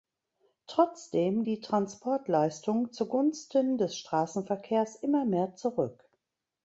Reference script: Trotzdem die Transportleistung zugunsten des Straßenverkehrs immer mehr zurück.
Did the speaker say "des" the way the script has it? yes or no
yes